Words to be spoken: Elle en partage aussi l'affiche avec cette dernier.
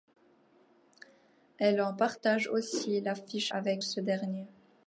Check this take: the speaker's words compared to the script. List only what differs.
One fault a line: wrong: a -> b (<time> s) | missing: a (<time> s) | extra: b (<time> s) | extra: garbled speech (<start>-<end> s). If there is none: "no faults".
wrong: cette -> ce (3.8 s)